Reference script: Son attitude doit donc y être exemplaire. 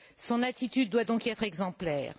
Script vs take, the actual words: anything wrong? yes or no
no